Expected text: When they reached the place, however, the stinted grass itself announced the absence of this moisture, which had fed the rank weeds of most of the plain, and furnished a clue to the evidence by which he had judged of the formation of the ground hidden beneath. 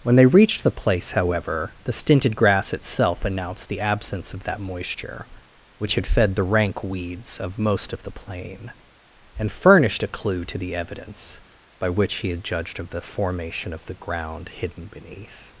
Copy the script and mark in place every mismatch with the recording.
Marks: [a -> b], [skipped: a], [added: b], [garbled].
When they reached the place, however, the stinted grass itself announced the absence of [this -> that] moisture, which had fed the rank weeds of most of the plain, and furnished a clue to the evidence by which he had judged of the formation of the ground hidden beneath.